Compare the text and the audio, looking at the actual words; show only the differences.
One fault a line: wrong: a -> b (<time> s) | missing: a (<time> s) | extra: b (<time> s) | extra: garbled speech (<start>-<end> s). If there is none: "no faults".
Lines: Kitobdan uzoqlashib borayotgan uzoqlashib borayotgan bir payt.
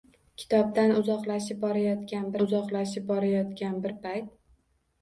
no faults